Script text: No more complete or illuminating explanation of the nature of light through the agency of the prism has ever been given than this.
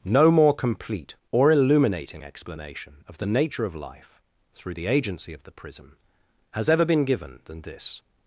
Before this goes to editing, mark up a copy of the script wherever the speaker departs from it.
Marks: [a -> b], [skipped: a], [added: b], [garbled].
No more complete or illuminating explanation of the nature of [light -> life] through the agency of the prism has ever been given than this.